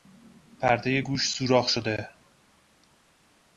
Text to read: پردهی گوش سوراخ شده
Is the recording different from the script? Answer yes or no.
no